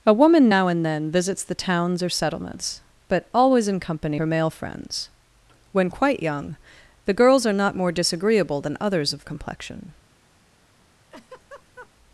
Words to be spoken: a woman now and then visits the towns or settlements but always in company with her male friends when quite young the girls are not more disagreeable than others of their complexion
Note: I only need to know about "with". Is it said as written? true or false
false